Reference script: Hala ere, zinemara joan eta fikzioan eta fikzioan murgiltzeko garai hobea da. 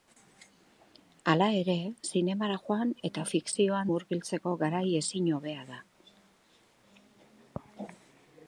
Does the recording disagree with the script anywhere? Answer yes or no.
yes